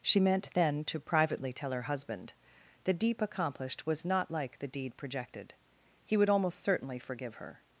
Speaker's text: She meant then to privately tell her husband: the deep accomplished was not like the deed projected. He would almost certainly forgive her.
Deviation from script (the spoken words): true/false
false